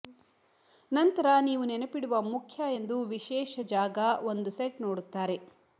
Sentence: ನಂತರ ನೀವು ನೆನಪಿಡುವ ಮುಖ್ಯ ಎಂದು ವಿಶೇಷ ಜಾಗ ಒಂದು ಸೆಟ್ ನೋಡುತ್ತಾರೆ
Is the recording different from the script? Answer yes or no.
no